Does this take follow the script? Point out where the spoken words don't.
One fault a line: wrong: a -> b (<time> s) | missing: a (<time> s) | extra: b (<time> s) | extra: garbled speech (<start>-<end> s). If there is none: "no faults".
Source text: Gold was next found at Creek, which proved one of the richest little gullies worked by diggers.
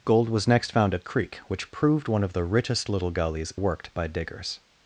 no faults